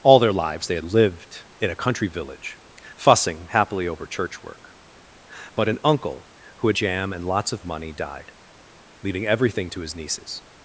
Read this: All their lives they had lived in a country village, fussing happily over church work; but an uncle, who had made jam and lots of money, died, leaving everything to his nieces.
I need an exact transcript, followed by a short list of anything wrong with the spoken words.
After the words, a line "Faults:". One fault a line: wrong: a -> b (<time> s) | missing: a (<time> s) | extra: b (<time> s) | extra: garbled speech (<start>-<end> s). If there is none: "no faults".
All their lives they had lived in a country village, fussing happily over church work; but an uncle, who had jam and lots of money, died, leaving everything to his nieces.
Faults:
missing: made (6.8 s)